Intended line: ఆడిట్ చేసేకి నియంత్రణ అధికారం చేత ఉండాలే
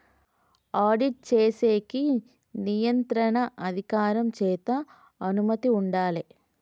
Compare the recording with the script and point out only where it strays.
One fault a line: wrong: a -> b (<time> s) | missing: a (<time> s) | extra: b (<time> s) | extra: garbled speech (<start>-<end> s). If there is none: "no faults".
extra: అనుమతి (5.2 s)